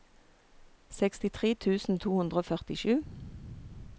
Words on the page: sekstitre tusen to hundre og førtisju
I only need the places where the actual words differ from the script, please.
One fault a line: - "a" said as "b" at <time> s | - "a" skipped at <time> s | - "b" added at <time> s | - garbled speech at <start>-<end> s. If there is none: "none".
none